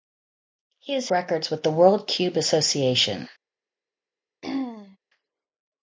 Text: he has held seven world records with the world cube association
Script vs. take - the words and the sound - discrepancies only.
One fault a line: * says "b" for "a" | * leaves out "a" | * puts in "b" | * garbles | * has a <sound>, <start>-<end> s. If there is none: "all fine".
* leaves out "held seven world"
* has a throat clearing, 4.4-5.0 s